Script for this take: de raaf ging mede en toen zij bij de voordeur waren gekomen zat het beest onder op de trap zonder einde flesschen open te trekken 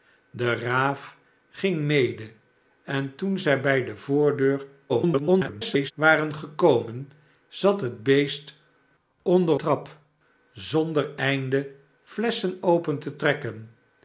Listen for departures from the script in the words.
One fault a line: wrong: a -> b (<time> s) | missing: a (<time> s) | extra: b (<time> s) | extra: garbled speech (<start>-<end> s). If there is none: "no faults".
extra: garbled speech (4.9-5.9 s)
missing: op de (9.6 s)